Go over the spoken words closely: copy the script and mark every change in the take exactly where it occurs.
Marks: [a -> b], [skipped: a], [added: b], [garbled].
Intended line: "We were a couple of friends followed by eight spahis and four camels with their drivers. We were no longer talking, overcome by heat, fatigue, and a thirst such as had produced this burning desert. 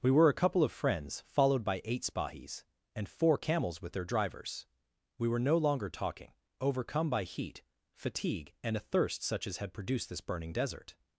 "We were a couple of friends followed by eight spahis and four camels with their drivers. We were no longer talking, overcome by heat, fatigue, and a thirst such as had produced this burning desert.